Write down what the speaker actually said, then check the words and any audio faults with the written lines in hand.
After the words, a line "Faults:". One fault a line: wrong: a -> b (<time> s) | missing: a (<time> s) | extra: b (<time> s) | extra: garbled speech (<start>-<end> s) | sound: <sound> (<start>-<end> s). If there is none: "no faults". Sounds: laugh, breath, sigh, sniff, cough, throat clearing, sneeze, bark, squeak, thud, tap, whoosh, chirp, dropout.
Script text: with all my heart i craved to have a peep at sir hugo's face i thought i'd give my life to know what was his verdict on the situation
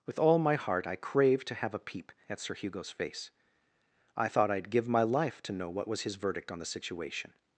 with all my heart i craved to have a peep at sir hugo's face i thought i'd give my life to know what was his verdict on the situation
Faults:
no faults